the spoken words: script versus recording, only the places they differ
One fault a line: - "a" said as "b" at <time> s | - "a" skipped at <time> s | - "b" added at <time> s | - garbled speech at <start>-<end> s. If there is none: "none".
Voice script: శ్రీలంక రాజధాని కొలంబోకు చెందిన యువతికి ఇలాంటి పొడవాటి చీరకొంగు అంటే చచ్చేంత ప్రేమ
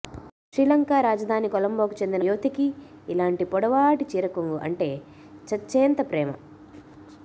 none